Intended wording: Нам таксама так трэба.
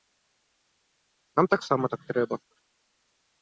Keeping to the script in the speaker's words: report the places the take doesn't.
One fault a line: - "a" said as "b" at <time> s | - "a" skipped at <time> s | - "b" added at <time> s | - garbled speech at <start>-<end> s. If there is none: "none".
none